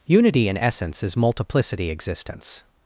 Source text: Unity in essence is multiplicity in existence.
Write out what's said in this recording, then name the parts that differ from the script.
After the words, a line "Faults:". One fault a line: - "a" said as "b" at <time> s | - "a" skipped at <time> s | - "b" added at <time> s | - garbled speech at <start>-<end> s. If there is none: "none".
Unity in essence is multiplicity existence.
Faults:
- "in" skipped at 1.9 s